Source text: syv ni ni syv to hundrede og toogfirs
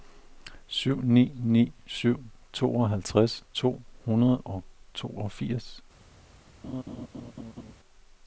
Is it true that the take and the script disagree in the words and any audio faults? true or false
true